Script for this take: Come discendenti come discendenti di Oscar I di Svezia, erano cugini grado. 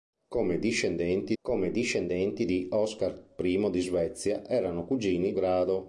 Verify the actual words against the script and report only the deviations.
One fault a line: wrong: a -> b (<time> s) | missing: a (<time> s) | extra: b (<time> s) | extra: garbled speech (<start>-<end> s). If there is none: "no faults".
no faults